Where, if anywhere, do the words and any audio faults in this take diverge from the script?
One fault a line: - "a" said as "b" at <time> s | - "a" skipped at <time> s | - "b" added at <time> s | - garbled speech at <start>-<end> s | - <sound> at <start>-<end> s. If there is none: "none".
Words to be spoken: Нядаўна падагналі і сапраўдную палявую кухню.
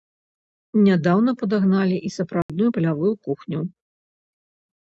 - dropout at 2.4-2.5 s